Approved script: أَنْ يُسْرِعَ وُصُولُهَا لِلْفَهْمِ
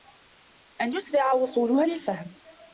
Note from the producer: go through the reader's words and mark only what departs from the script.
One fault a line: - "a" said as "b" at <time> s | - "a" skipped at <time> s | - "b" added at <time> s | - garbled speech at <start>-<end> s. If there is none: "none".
none